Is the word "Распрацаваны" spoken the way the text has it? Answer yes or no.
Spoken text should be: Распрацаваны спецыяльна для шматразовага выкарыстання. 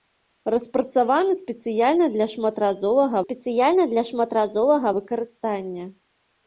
yes